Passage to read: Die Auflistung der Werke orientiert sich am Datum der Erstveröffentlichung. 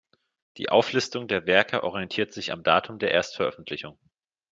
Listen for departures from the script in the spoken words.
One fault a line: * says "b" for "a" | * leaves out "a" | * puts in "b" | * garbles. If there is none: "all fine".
all fine